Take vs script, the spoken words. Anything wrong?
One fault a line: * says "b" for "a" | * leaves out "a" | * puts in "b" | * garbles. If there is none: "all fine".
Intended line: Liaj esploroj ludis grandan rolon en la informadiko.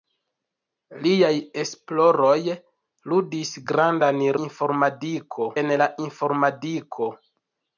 * says "informadiko" for "rolon"